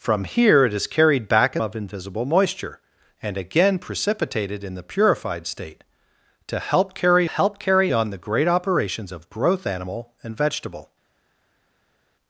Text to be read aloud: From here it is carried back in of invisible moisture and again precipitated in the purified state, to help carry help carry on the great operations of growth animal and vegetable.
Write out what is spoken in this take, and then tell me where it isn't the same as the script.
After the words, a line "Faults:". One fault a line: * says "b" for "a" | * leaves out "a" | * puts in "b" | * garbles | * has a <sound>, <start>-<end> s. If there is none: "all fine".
From here it is carried back in of invisible moisture and again precipitated in the purified state, to help carry help carry on the great operations of growth animal and vegetable.
Faults:
all fine